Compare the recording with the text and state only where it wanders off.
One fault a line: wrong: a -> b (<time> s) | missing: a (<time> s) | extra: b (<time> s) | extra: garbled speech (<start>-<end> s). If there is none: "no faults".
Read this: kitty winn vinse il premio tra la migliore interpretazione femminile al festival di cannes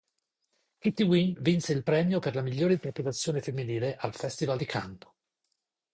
wrong: tra -> per (2.2 s)